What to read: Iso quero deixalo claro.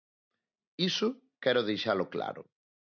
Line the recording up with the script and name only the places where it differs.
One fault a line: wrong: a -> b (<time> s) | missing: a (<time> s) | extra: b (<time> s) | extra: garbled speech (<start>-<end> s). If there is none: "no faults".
no faults